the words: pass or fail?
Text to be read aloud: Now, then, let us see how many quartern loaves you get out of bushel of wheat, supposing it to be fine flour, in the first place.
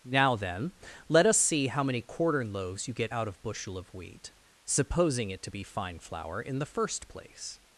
pass